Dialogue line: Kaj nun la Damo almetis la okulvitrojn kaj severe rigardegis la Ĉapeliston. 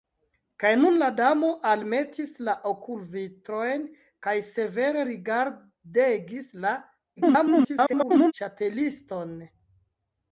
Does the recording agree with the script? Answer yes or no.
no